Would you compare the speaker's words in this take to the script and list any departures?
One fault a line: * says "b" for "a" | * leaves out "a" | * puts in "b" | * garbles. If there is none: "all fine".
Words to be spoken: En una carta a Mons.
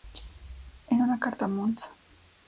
all fine